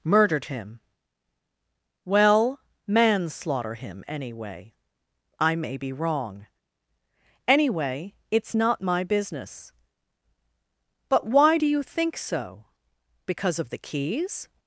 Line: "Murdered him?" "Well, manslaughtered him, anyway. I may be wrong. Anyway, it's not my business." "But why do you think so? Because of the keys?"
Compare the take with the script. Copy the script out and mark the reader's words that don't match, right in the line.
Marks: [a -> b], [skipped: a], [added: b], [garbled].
"Murdered him?" "Well, [manslaughtered -> manslaughter] him, anyway. I may be wrong. Anyway, it's not my business." "But why do you think so? Because of the keys?"